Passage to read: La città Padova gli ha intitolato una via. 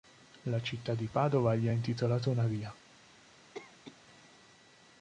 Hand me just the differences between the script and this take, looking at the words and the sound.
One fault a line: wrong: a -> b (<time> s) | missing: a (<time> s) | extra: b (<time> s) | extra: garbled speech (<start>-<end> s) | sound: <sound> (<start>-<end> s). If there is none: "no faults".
extra: di (0.9 s)
sound: cough (3.5-4.0 s)